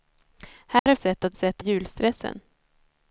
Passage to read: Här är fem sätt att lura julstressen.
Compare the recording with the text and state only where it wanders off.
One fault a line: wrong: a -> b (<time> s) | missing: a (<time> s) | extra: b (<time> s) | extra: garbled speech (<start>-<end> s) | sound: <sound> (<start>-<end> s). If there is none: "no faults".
sound: dropout (0.8-0.9 s)
missing: fem (0.9 s)
wrong: lura -> sätt (1.3 s)